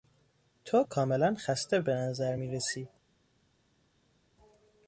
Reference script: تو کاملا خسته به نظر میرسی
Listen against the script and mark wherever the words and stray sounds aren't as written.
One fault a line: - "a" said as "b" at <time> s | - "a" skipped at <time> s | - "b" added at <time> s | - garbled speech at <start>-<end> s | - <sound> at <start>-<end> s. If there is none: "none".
none